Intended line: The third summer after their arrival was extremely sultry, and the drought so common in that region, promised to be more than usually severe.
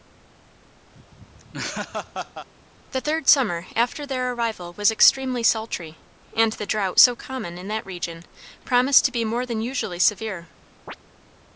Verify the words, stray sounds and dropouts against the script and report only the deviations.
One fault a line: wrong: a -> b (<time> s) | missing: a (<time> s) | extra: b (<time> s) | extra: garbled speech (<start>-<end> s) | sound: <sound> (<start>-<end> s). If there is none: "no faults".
sound: laugh (0.9-2.5 s)
sound: chirp (10.9-11.0 s)